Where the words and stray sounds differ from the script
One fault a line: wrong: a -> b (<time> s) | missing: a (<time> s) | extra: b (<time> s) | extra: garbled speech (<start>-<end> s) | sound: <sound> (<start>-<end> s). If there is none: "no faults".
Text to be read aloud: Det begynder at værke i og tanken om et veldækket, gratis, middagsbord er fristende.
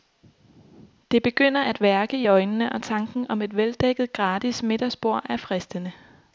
extra: øjnene (2.3 s)